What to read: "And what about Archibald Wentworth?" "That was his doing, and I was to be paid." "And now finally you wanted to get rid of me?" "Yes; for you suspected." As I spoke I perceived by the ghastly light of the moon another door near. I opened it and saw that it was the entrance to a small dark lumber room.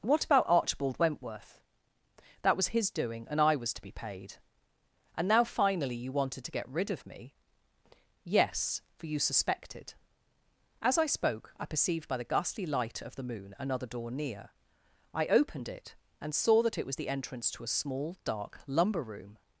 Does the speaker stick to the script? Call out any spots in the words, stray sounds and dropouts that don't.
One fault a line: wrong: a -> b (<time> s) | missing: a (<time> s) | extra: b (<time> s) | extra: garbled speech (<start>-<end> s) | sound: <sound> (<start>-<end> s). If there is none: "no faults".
missing: And (0.0 s)